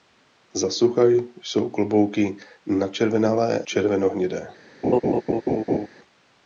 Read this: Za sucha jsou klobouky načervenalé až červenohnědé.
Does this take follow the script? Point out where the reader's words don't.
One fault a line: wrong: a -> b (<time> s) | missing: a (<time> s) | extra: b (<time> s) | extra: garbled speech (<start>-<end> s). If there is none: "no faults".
missing: až (3.6 s)